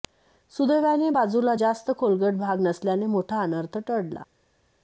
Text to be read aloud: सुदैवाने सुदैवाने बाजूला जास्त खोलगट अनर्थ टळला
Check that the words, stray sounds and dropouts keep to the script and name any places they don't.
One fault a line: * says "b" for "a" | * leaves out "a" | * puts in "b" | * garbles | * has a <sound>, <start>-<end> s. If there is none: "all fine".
* leaves out "सुदैवाने"
* puts in "भाग नसल्याने मोठा"